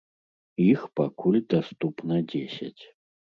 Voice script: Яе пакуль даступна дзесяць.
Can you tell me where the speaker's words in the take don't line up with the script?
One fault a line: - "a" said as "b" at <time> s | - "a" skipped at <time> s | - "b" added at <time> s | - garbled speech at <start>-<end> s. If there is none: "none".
- "Яе" said as "Іх" at 0.7 s